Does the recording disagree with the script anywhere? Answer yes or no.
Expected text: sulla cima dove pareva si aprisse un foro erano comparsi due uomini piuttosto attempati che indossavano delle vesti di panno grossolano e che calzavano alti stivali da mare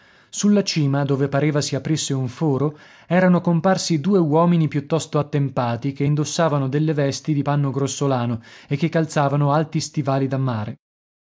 no